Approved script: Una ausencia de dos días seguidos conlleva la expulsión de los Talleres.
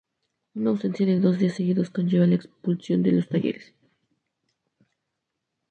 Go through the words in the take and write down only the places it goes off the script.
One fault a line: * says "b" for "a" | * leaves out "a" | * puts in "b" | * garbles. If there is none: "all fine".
all fine